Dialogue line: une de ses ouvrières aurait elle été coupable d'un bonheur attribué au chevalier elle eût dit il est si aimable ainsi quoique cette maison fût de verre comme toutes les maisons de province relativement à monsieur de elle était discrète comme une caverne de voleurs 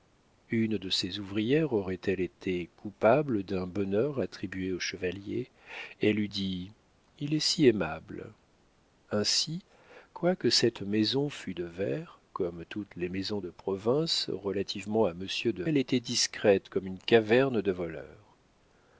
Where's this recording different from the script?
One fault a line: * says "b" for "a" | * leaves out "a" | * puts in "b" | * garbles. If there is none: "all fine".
all fine